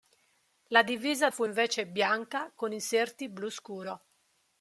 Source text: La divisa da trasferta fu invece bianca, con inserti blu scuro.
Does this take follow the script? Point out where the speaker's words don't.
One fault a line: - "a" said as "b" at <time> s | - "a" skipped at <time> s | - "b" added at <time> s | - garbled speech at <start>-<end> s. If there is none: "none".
- "da trasferta" skipped at 1.3 s